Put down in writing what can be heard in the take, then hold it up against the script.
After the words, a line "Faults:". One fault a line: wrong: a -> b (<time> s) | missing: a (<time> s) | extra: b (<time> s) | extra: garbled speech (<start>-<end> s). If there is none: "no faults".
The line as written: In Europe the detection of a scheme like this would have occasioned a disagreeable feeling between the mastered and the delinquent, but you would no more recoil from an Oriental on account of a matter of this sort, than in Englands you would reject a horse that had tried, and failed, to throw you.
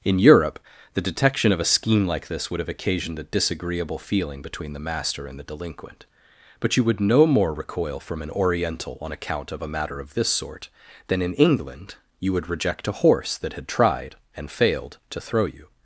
In Europe the detection of a scheme like this would have occasioned a disagreeable feeling between the master and the delinquent, but you would no more recoil from an Oriental on account of a matter of this sort, than in England you would reject a horse that had tried, and failed, to throw you.
Faults:
wrong: mastered -> master (4.8 s)
wrong: Englands -> England (11.3 s)